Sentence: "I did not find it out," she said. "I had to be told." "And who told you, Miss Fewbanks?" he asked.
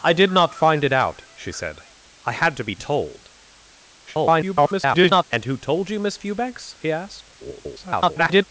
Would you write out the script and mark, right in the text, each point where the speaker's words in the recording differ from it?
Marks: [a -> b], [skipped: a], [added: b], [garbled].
"I did not find it out," she said. "I had to be told." [garbled] "And who told you, Miss Fewbanks?" he asked. [garbled]